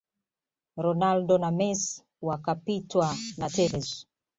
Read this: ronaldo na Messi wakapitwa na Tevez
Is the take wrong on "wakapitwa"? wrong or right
right